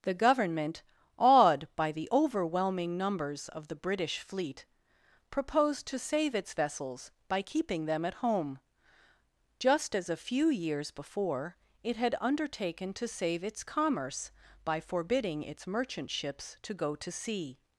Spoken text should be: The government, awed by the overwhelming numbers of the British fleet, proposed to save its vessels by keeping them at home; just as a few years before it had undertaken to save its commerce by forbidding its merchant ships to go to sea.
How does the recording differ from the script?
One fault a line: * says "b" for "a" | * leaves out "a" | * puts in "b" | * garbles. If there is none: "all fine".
all fine